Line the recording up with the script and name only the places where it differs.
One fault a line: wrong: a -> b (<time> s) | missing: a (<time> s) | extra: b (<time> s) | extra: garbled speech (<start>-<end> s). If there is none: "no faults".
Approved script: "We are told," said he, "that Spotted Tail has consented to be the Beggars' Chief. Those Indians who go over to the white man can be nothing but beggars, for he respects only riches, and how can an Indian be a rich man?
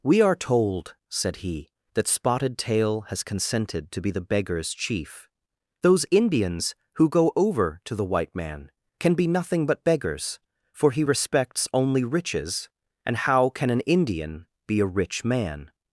no faults